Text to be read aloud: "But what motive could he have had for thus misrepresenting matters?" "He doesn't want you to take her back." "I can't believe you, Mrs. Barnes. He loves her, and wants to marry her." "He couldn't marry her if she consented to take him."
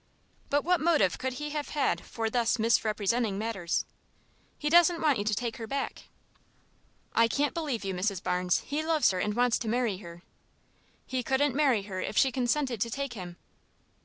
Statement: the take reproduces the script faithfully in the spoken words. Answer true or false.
true